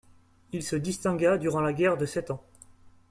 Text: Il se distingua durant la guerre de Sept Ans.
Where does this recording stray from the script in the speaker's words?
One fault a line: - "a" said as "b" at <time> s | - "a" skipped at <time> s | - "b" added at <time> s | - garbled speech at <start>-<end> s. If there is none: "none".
none